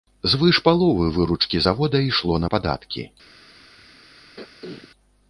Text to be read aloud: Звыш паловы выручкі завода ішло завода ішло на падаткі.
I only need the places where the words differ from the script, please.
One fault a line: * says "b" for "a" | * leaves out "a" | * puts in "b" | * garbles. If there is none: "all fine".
* leaves out "завода ішло"